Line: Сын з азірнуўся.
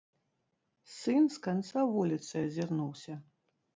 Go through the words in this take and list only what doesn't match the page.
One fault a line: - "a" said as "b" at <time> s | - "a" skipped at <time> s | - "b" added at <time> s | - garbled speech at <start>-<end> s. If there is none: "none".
- "канца вуліцы" added at 1.5 s